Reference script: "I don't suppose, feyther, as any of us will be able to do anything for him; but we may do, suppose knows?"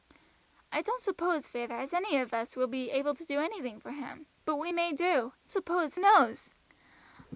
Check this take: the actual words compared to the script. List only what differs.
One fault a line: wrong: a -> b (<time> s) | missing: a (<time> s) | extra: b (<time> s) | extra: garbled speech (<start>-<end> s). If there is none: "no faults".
no faults